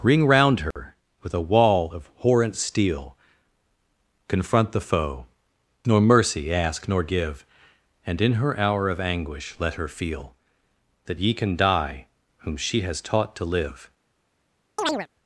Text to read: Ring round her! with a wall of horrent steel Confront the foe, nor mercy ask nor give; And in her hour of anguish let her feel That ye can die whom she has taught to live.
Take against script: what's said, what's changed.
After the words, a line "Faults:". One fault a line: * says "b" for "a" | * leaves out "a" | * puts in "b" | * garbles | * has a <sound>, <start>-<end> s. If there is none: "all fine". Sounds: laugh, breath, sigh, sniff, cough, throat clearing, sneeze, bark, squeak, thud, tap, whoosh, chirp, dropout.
Ring round her! with a wall of horrent steel Confront the foe, nor mercy ask nor give; And in her hour of anguish let her feel That ye can die whom she has taught to live.
Faults:
* has a dropout, 0.7-0.8 s
* has a chirp, 14.8-15.1 s